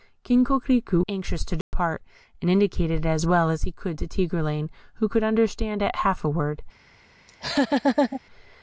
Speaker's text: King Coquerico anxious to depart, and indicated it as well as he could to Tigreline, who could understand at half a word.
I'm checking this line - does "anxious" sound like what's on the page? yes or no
yes